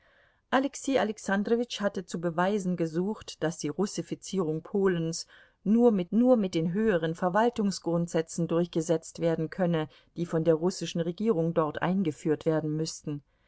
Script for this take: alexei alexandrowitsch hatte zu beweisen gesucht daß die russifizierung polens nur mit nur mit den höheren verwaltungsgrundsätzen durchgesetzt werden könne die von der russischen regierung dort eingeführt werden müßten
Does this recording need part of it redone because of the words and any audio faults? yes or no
no